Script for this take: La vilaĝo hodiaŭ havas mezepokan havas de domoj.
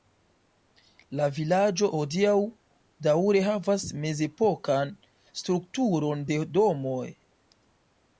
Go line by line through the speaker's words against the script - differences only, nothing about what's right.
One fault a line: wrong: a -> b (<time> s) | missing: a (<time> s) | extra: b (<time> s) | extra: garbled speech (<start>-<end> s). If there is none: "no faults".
extra: daŭre (3.1 s)
wrong: havas -> strukturon (5.4 s)